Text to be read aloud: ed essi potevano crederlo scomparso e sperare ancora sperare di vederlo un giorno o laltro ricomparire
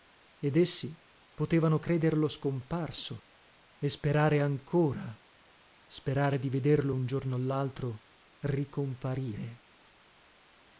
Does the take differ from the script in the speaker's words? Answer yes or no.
no